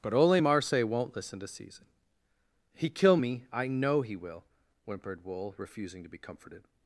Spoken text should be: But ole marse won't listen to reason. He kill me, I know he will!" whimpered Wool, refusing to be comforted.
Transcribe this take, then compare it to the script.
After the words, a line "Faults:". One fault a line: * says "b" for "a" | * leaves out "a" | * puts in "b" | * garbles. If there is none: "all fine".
But ole marse won't listen to season. He kill me, I know he will!" whimpered Wool, refusing to be comforted.
Faults:
* says "season" for "reason"